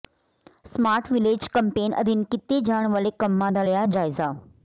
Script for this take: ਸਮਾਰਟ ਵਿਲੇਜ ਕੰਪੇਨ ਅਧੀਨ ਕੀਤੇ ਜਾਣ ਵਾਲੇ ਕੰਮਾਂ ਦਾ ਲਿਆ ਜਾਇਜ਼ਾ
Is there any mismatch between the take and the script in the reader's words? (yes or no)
no